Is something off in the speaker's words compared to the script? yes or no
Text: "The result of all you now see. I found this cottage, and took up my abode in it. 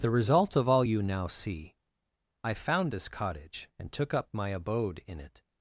no